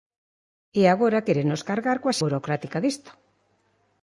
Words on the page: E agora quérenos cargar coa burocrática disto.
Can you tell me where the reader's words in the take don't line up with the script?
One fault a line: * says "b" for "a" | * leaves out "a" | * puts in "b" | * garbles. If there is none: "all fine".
all fine